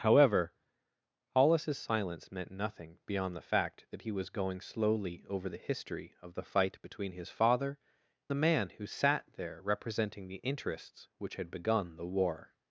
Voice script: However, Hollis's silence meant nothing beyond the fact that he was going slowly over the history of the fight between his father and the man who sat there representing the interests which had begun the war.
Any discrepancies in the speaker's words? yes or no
yes